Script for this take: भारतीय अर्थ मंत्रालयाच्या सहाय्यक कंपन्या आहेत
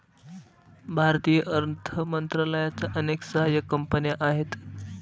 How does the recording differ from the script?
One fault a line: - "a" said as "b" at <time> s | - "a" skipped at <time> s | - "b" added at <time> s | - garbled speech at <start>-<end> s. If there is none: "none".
- "अनेक" added at 3.0 s